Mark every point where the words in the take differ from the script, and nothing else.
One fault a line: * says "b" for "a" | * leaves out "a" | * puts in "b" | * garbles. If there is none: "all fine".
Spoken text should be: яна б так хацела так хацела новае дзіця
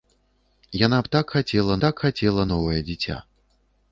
all fine